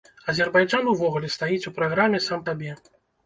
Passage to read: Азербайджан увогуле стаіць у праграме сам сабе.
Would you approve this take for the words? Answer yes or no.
yes